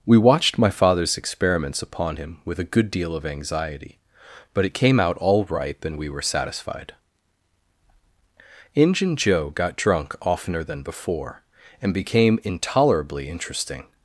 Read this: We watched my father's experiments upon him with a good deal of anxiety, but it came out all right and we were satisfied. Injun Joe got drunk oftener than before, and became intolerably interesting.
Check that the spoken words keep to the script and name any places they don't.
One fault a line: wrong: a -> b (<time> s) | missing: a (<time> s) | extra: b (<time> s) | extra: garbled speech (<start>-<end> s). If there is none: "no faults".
wrong: right -> ripe (5.5 s)